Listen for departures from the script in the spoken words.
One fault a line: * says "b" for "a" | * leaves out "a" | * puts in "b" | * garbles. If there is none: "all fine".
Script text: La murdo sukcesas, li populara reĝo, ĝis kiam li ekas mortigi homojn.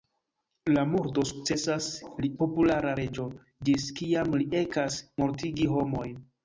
all fine